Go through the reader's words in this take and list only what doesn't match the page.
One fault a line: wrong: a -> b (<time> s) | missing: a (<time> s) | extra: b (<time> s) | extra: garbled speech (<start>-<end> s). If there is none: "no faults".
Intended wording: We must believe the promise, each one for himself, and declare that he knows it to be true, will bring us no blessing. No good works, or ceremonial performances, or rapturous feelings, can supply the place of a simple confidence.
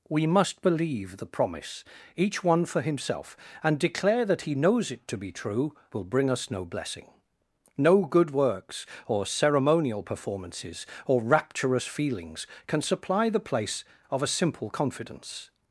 no faults